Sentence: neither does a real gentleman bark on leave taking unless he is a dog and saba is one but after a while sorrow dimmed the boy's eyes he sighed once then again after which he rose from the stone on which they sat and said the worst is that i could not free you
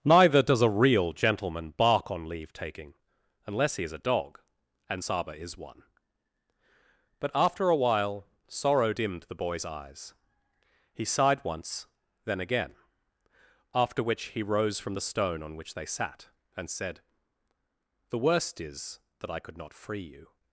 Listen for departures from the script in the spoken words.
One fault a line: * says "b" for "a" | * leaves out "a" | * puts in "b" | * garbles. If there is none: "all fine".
all fine